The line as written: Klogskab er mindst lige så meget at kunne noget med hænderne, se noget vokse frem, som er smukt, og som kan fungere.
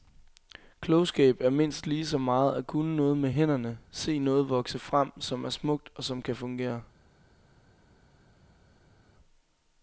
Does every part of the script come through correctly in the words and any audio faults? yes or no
yes